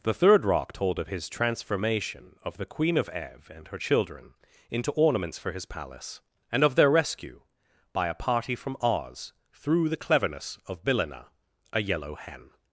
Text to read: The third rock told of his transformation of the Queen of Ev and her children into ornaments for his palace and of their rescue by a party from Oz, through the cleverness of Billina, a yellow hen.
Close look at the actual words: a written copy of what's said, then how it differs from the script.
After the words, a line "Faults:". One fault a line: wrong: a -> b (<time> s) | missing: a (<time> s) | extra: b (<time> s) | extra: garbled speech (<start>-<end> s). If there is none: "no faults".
The third rock told of his transformation of the Queen of Ev and her children into ornaments for his palace and of their rescue by a party from Oz, through the cleverness of Billina, a yellow hen.
Faults:
no faults